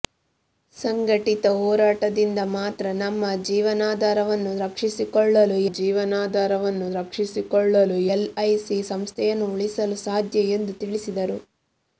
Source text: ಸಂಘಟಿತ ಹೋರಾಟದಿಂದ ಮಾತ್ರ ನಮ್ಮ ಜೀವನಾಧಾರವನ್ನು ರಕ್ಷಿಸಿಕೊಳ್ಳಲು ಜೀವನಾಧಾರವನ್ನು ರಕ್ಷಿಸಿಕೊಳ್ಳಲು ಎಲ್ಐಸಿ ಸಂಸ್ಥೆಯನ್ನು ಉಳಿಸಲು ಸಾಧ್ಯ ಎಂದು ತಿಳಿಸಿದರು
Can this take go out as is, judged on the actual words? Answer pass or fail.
pass